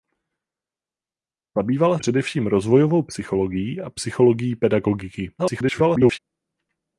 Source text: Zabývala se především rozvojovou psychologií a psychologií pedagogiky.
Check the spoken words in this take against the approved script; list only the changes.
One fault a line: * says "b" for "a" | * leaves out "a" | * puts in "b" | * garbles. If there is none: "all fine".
* leaves out "se"
* garbles